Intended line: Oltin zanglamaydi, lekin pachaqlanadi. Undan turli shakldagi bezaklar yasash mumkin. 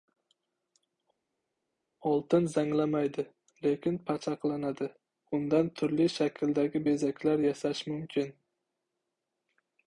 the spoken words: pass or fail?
pass